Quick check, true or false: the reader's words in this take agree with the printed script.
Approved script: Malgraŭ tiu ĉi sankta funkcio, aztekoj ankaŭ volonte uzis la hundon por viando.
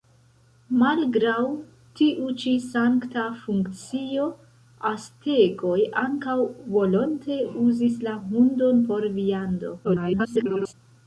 false